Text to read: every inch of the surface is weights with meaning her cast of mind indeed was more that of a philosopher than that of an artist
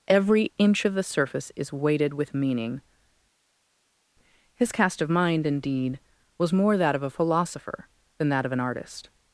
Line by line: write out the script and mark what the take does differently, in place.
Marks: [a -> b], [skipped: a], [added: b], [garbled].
every inch of the surface is [weights -> weighted] with meaning [her -> his] cast of mind indeed was more that of a philosopher than that of an artist